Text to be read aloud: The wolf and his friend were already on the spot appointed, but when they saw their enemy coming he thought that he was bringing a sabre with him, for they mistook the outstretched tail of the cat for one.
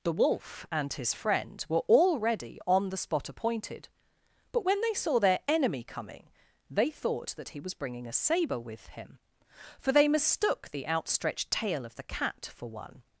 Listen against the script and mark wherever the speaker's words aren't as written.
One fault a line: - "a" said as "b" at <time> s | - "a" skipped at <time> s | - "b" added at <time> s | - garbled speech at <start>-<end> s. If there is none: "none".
- "he" said as "they" at 6.7 s